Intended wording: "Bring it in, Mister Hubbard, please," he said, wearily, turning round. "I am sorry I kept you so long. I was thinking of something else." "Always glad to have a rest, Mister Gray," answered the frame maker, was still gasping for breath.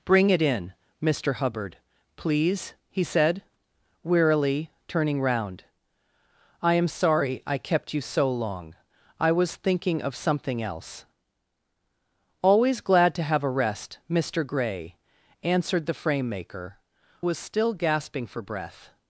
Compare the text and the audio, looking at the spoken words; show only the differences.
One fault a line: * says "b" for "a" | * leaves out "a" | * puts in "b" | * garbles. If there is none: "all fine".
all fine